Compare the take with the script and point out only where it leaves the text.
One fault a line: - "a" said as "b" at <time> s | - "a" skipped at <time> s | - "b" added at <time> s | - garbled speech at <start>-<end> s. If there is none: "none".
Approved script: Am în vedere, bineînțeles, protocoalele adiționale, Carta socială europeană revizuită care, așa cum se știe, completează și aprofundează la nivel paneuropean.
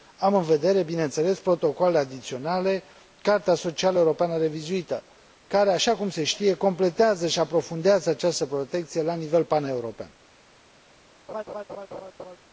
- "această protecție" added at 8.1 s